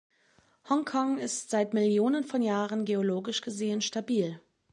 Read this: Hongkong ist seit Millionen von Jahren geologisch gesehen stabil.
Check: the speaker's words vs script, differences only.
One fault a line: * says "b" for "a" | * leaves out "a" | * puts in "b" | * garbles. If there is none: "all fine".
all fine